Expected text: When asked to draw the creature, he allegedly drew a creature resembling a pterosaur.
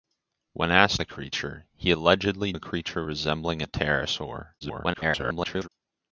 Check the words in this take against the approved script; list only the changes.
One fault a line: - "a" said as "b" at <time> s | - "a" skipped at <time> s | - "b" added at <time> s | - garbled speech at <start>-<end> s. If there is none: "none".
- "to draw" skipped at 1.0 s
- "drew" skipped at 2.5 s
- garbled speech at 4.6-5.7 s